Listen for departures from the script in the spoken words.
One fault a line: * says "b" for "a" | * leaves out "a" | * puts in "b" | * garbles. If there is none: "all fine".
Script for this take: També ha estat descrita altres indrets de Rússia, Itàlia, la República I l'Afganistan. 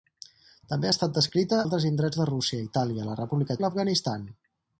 all fine